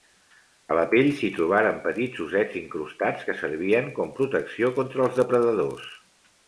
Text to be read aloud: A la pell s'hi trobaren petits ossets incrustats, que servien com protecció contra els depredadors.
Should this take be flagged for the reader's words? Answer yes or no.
no